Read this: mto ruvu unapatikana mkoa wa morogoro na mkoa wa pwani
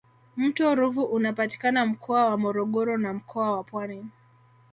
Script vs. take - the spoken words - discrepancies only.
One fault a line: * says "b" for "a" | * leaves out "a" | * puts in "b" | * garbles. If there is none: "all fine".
all fine